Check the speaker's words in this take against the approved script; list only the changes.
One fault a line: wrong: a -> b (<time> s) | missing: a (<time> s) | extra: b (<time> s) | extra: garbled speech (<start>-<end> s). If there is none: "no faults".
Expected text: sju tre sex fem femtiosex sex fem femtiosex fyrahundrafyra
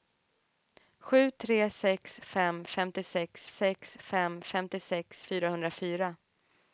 no faults